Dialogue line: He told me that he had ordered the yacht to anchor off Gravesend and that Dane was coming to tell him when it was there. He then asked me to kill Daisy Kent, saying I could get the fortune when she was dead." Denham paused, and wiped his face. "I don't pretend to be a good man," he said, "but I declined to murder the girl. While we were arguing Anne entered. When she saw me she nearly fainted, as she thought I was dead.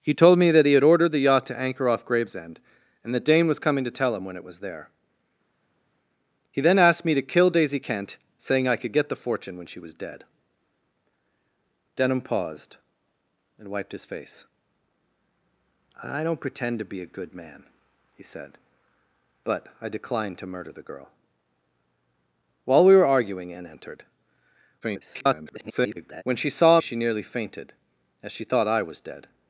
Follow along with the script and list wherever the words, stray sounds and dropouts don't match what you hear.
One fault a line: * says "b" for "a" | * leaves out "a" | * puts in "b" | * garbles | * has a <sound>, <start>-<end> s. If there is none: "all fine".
* garbles
* leaves out "me"